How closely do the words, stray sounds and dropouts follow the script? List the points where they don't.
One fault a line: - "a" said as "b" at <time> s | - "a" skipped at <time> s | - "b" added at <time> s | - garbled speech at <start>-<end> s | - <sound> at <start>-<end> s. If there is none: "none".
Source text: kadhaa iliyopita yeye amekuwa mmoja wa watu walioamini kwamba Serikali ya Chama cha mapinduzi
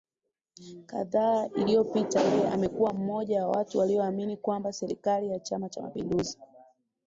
none